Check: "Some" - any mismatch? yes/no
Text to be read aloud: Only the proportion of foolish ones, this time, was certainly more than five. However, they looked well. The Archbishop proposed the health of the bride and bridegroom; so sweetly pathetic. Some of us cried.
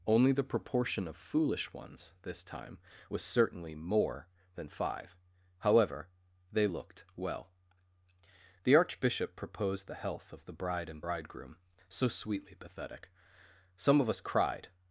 no